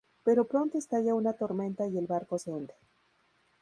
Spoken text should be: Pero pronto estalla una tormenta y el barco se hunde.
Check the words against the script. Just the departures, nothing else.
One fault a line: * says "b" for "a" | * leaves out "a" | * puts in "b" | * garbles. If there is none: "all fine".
all fine